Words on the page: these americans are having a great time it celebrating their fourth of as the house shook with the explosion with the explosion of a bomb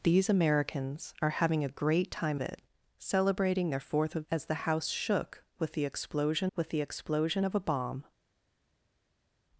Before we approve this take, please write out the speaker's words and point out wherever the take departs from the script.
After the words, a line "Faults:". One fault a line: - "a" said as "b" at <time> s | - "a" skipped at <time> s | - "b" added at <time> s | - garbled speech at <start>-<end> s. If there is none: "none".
these americans are having a great time it celebrating their fourth of as the house shook with the explosion with the explosion of a bomb
Faults:
none